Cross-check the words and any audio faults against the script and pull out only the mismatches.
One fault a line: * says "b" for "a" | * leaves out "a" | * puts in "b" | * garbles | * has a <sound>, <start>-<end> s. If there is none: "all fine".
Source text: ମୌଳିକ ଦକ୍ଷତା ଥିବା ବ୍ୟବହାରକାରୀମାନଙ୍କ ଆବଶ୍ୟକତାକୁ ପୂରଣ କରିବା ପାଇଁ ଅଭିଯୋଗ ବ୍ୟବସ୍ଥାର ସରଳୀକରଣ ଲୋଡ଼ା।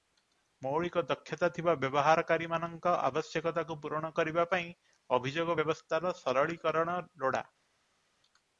all fine